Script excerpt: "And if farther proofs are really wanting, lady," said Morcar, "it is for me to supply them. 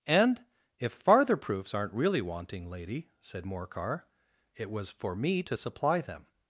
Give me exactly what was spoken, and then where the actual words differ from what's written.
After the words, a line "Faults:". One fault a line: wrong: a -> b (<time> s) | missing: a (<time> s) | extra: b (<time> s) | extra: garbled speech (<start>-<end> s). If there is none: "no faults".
"And if farther proofs aren't really wanting, lady," said Morcar, "it was for me to supply them.
Faults:
wrong: are -> aren't (1.7 s)
wrong: is -> was (4.7 s)